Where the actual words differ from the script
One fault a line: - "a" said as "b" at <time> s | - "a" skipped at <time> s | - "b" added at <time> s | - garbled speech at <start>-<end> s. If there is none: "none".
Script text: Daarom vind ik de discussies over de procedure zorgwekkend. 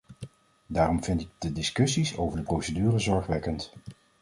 none